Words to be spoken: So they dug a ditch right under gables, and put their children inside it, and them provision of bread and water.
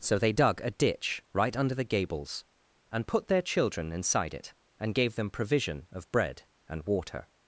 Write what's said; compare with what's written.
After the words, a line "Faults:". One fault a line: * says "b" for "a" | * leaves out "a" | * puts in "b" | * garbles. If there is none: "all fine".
So they dug a ditch right under the gables, and put their children inside it, and gave them provision of bread and water.
Faults:
* puts in "the"
* puts in "gave"